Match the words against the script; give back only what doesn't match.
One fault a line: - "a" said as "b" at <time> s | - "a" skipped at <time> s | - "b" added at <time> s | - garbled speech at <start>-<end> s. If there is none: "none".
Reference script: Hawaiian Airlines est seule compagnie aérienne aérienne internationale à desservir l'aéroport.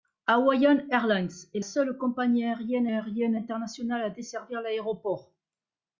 none